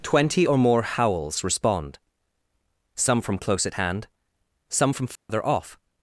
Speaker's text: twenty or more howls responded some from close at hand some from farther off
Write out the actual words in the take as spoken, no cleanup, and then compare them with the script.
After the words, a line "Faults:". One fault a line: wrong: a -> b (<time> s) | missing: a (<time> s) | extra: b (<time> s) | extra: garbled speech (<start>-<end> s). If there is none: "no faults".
twenty or more howls respond some from close at hand some from farther off
Faults:
wrong: responded -> respond (1.4 s)